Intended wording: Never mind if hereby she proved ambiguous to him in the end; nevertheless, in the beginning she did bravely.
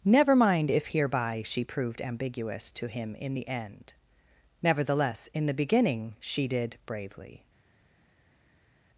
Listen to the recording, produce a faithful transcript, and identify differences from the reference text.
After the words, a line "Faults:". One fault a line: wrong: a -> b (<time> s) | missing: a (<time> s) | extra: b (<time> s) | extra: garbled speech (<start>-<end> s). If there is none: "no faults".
Never mind if hereby she proved ambiguous to him in the end; nevertheless, in the beginning she did bravely.
Faults:
no faults